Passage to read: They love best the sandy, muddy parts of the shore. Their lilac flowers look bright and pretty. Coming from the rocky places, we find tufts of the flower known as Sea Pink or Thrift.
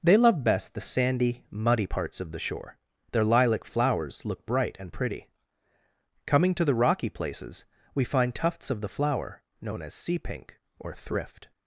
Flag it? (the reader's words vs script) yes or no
yes